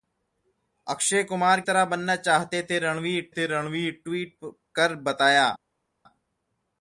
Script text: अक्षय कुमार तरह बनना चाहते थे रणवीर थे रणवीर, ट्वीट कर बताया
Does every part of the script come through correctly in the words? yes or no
yes